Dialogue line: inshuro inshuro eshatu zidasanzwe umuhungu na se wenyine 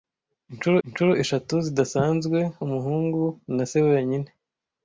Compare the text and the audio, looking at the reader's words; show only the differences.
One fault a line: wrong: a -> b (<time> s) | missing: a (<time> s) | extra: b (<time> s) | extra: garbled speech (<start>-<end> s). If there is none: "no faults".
no faults